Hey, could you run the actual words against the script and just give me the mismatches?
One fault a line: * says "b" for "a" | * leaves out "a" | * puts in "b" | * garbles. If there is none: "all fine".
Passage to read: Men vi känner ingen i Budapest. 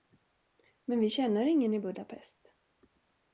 all fine